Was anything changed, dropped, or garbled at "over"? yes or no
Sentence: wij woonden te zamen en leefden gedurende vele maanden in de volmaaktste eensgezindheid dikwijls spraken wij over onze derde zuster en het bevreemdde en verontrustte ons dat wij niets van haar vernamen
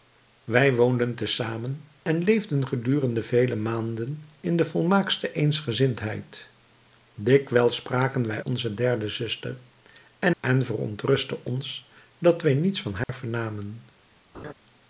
yes